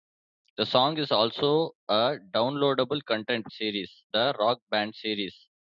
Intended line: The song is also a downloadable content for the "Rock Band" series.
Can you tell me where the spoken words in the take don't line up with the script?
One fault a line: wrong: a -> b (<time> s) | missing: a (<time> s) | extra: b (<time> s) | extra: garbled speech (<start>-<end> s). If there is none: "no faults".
wrong: for -> series (3.5 s)